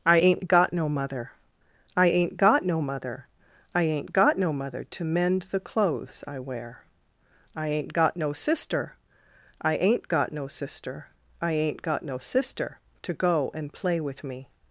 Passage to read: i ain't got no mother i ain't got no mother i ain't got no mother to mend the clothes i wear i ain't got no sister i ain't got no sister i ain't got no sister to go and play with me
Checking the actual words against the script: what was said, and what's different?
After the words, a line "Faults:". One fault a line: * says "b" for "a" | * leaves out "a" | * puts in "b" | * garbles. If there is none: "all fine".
i ain't got no mother i ain't got no mother i ain't got no mother to mend the clothes i wear i ain't got no sister i ain't got no sister i ain't got no sister to go and play with me
Faults:
all fine